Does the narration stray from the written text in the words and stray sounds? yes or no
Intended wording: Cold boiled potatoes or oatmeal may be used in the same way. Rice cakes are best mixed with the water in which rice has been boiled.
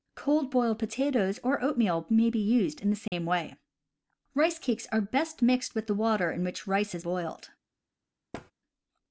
yes